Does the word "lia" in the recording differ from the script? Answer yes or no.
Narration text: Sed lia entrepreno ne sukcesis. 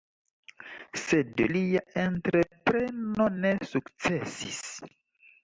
no